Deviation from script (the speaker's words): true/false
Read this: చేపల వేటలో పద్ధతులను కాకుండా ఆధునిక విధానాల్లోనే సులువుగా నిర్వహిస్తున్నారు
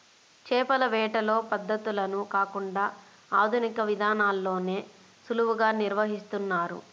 false